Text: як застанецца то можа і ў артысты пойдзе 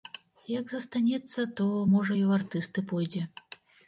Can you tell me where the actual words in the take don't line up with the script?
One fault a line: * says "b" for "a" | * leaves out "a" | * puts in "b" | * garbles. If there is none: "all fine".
all fine